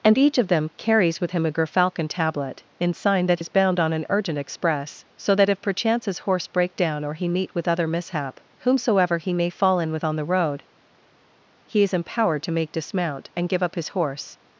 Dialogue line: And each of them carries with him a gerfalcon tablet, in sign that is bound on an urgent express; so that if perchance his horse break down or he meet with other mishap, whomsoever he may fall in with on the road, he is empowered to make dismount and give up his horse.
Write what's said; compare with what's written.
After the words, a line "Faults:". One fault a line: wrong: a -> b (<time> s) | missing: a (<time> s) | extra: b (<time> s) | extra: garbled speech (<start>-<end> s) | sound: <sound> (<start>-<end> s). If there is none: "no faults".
And each of them carries with him a gerfalcon tablet, in sign that is bound on an urgent express; so that if perchance his horse break down or he meet with other mishap, whomsoever he may fall in with on the road, he is empowered to make dismount and give up his horse.
Faults:
no faults